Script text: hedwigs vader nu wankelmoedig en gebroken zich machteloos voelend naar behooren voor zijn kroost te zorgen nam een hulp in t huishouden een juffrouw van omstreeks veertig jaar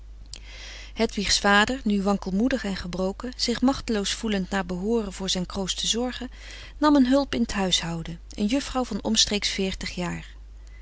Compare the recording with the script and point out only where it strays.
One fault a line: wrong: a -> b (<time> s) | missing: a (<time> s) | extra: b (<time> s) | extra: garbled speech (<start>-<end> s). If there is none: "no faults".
no faults